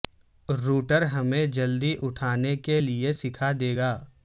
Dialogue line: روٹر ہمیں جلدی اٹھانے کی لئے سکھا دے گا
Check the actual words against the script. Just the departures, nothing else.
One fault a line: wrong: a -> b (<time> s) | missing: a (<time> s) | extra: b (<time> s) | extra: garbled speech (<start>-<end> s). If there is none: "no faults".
wrong: کی -> کے (2.6 s)